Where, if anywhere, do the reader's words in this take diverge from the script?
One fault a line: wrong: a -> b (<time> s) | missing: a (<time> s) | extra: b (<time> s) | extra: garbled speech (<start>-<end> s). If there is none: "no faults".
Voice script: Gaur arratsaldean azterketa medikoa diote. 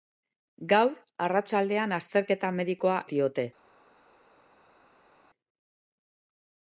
no faults